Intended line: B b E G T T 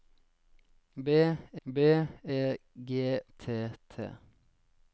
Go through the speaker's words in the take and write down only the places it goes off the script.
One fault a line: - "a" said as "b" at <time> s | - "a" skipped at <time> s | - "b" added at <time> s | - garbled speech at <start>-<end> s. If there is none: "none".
none